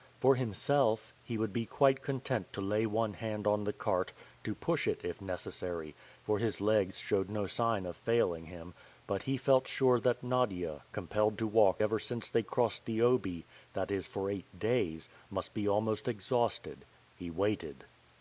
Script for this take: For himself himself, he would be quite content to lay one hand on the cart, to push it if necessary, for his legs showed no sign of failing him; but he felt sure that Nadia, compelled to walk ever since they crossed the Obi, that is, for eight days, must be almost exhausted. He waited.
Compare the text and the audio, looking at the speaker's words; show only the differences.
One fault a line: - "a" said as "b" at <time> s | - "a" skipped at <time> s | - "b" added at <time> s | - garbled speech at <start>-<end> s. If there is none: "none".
- "himself" skipped at 1.1 s